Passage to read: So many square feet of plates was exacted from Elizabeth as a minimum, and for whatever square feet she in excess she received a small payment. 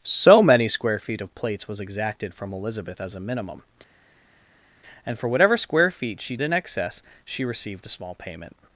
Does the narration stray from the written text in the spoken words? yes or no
no